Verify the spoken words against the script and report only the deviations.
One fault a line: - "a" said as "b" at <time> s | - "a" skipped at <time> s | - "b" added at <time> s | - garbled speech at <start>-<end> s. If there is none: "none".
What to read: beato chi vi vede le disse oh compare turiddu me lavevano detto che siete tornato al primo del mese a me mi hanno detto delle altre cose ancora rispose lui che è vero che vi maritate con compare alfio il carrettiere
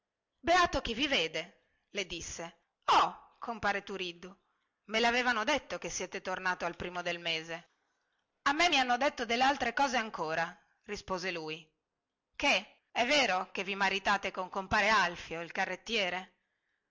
none